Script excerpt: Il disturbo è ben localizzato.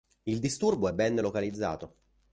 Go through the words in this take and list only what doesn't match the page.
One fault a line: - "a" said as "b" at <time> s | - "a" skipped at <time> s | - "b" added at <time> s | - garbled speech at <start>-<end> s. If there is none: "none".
none